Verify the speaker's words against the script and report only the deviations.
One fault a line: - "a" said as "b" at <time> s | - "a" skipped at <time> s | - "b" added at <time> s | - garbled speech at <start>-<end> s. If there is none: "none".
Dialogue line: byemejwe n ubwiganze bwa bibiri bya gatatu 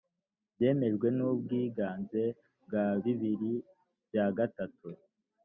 none